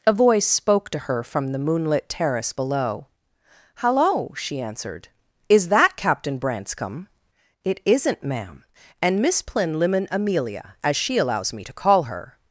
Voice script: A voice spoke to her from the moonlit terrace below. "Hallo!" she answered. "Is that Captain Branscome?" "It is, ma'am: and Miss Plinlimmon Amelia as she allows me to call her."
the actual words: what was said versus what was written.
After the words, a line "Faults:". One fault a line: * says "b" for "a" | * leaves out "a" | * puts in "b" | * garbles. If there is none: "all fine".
A voice spoke to her from the moonlit terrace below. "Hallo!" she answered. "Is that Captain Branscome?" "It isn't, ma'am: and Miss Plinlimmon Amelia as she allows me to call her."
Faults:
* says "isn't" for "is"